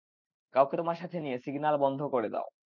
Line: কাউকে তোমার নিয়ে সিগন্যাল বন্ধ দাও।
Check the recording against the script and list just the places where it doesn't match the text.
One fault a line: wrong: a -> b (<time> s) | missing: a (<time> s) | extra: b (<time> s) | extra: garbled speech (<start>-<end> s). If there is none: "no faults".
extra: সাথে (1.0 s)
extra: করে (2.1 s)